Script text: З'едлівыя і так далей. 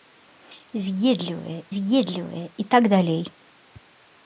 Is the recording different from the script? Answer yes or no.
yes